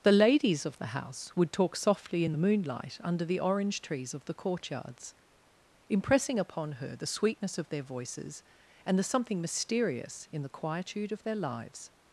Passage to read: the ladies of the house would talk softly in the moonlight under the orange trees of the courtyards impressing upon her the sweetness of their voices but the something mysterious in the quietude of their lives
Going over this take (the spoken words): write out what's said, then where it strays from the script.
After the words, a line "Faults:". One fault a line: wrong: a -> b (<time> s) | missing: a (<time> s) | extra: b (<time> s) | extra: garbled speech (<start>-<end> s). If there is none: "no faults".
the ladies of the house would talk softly in the moonlight under the orange trees of the courtyards impressing upon her the sweetness of their voices and the something mysterious in the quietude of their lives
Faults:
wrong: but -> and (8.8 s)